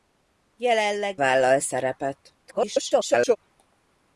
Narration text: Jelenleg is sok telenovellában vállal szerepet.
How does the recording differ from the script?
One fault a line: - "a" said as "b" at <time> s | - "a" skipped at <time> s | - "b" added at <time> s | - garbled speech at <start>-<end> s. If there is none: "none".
- "is sok telenovellában" skipped at 1.2 s
- garbled speech at 2.4-3.4 s